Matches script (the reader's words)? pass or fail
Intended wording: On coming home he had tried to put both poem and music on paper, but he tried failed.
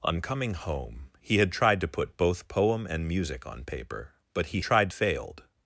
pass